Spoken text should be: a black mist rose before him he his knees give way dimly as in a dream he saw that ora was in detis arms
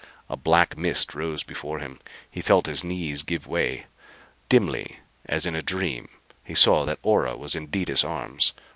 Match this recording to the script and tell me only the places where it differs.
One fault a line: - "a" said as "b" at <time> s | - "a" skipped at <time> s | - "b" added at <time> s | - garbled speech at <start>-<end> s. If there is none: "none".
- "felt" added at 2.4 s